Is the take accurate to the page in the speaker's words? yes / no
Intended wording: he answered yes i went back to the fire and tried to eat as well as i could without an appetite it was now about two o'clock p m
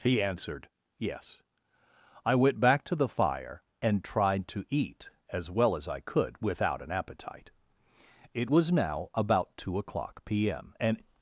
no